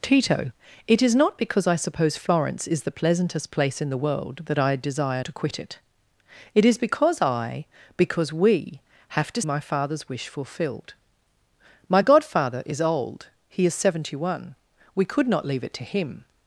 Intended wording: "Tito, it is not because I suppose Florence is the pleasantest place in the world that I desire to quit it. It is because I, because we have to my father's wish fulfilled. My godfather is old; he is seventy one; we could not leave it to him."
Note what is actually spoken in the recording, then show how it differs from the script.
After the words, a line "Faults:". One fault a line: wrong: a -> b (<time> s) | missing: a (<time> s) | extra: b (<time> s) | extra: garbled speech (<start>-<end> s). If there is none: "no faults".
"Tito, it is not because I suppose Florence is the pleasantest place in the world that I desire to quit it. It is because I, because we have to my father's wish fulfilled. My godfather is old; he is seventy one; we could not leave it to him."
Faults:
no faults